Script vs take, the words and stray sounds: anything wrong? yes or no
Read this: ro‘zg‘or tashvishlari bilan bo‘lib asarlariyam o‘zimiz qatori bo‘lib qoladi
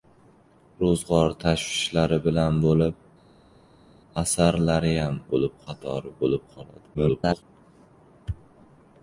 yes